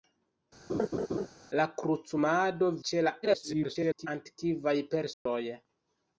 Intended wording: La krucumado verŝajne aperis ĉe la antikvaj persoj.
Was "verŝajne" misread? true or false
true